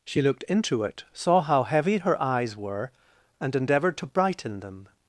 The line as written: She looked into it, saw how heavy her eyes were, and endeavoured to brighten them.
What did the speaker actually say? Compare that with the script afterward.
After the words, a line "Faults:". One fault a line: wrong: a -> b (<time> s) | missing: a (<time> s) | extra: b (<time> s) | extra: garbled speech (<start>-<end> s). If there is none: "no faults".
She looked into it, saw how heavy her eyes were, and endeavoured to brighten them.
Faults:
no faults